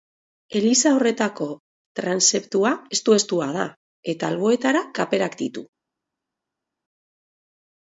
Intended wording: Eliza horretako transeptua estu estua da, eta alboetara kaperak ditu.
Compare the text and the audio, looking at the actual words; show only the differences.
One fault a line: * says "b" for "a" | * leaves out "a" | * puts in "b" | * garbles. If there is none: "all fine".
all fine